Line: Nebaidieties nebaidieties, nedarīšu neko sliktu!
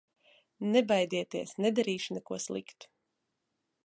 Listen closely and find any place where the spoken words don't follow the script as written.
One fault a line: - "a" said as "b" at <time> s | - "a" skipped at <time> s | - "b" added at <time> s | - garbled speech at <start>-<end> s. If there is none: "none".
- "nebaidieties" skipped at 1.5 s